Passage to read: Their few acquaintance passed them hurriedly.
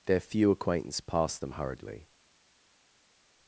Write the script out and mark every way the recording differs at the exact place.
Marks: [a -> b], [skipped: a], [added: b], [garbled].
Their few acquaintance passed them hurriedly.